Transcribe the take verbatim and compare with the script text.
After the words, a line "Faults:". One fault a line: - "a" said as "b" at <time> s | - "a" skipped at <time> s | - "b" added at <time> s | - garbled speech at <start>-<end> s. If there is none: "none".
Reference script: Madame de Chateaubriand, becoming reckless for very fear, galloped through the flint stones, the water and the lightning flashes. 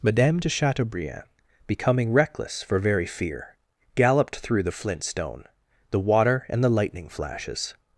Madame de Chateaubriand, becoming reckless for very fear, galloped through the flint stone, the water and the lightning flashes.
Faults:
- "stones" said as "stone" at 5.0 s